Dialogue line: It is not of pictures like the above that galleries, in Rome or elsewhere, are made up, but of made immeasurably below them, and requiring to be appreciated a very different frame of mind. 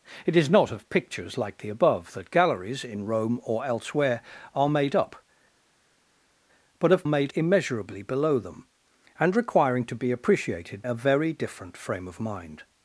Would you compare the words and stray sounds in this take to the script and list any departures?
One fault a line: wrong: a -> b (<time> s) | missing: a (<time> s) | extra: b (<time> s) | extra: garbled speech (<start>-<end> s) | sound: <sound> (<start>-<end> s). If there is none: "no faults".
no faults